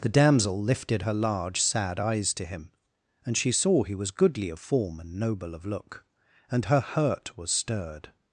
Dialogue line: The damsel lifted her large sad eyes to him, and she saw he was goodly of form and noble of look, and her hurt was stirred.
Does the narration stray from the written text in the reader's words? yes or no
no